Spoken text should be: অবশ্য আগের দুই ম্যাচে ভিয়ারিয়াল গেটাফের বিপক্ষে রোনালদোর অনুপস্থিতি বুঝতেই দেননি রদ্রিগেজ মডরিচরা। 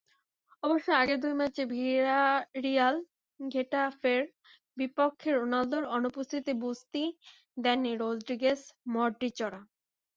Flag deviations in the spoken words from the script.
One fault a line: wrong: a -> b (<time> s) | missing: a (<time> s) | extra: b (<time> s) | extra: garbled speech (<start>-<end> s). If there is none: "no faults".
no faults